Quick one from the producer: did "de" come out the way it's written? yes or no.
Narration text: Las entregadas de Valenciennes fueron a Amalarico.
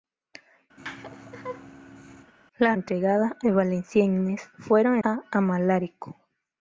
yes